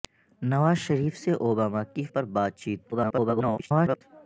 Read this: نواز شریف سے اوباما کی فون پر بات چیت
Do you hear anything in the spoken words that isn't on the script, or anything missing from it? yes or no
yes